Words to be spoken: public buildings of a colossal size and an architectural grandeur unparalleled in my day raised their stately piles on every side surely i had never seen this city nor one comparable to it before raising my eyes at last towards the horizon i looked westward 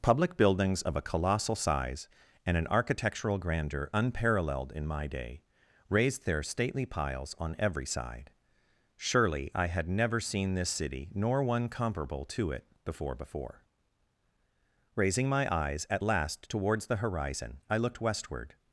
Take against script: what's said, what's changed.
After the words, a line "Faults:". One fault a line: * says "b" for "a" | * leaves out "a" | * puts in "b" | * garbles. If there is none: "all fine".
public buildings of a colossal size and an architectural grandeur unparalleled in my day raised their stately piles on every side surely i had never seen this city nor one comparable to it before before raising my eyes at last towards the horizon i looked westward
Faults:
* puts in "before"